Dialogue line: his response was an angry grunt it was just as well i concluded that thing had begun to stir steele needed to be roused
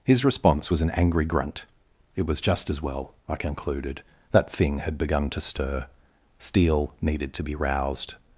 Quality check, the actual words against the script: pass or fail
pass